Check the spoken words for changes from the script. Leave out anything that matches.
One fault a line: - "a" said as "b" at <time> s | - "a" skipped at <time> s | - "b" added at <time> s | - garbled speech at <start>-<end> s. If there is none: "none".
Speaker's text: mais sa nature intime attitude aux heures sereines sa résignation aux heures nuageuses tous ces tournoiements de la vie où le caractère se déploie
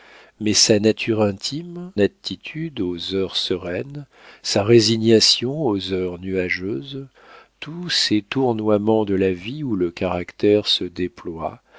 none